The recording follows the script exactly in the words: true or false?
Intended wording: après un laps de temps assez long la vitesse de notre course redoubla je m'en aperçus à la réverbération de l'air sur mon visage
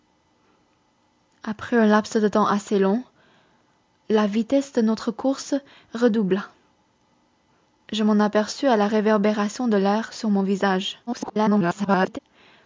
false